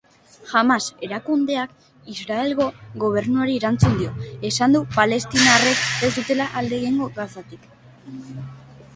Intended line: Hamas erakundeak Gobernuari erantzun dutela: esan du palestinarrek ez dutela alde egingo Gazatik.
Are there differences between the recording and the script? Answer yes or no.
yes